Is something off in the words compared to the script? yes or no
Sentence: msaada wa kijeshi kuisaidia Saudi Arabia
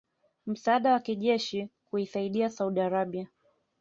no